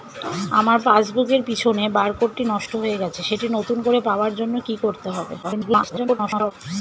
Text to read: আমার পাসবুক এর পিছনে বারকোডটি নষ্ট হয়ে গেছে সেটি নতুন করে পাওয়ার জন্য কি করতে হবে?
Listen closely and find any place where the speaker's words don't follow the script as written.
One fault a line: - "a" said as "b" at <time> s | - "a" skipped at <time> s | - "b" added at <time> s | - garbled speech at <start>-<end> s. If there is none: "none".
- garbled speech at 5.4-6.5 s